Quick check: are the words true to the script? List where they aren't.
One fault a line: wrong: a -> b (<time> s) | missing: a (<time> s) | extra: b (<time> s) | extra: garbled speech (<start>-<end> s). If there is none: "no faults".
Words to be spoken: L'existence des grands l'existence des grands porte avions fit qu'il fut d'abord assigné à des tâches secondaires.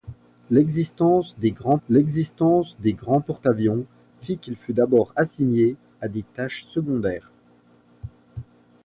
no faults